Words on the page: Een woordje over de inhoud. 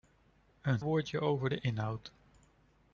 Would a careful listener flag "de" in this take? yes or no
no